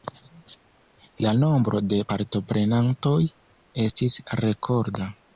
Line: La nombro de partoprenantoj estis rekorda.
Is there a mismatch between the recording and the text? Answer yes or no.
no